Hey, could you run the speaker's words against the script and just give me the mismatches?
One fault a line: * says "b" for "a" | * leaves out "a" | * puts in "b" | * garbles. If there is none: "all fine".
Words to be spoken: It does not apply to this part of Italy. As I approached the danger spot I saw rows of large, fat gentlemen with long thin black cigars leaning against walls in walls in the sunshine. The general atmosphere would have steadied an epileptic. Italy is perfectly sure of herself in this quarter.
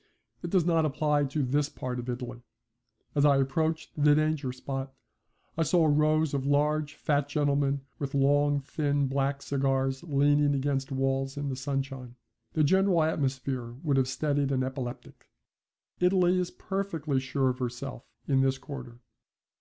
* leaves out "walls in"